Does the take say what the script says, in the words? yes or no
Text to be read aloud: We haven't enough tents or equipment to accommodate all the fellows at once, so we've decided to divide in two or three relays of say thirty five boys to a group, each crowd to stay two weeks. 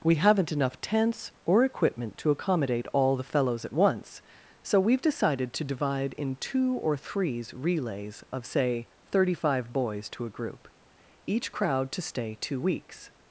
no